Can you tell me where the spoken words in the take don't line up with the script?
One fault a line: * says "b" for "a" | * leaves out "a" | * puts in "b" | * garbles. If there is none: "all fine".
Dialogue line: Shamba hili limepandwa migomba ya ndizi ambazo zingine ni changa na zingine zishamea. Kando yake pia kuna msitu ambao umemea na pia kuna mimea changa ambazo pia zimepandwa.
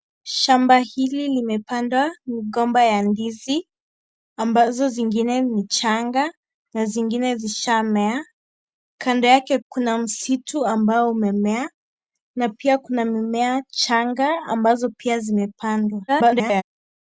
* leaves out "pia"
* garbles